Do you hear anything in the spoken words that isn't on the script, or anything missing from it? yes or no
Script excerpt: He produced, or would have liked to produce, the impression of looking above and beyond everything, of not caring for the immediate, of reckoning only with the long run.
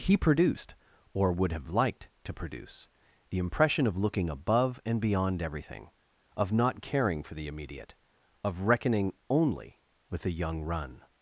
yes